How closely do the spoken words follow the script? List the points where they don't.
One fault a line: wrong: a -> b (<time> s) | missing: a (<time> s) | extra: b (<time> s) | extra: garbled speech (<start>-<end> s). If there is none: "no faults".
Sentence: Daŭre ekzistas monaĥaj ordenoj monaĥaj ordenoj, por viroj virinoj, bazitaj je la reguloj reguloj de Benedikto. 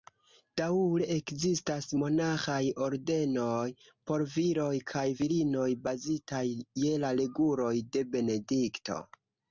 missing: monaĥaj ordenoj (3.7 s)
extra: kaj (4.9 s)
missing: reguloj (7.7 s)